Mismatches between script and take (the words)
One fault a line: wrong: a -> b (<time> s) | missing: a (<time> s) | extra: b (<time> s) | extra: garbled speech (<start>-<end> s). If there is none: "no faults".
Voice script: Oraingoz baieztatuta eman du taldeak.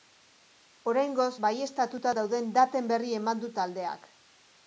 extra: dauden daten berri (2.2 s)